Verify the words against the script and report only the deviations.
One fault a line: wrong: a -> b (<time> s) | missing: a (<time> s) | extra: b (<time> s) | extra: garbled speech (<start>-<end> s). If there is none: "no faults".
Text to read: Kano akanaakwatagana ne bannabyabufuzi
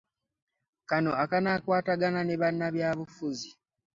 no faults